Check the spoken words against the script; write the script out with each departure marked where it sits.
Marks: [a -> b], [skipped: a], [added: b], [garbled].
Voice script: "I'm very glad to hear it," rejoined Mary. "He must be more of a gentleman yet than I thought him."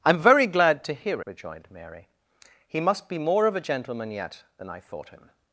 "I'm very glad to hear [skipped: it,"] rejoined Mary. "He must be more of a gentleman yet than I thought him."